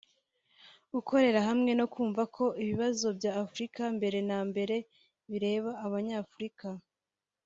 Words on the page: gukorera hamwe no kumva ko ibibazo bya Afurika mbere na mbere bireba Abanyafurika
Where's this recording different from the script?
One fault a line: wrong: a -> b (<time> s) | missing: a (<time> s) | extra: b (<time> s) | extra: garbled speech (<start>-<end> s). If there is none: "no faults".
no faults